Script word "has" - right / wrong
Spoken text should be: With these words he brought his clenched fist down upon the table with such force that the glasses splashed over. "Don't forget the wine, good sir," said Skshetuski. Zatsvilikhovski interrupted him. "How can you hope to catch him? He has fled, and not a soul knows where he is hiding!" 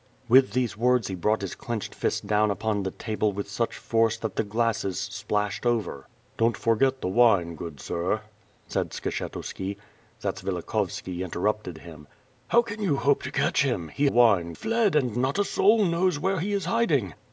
wrong